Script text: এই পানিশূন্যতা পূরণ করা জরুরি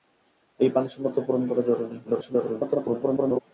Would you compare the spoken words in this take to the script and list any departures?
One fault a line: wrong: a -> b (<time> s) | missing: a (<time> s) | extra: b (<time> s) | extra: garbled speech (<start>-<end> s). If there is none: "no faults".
extra: garbled speech (2.0-3.4 s)